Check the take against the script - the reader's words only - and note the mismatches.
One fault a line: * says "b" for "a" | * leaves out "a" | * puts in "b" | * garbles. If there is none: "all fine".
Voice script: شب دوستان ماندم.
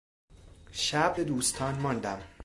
all fine